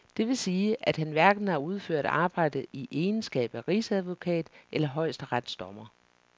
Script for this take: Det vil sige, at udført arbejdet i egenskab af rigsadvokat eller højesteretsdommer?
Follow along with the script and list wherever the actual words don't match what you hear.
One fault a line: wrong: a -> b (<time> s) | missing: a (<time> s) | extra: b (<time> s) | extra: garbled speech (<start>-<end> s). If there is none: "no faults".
extra: han hverken har (1.0 s)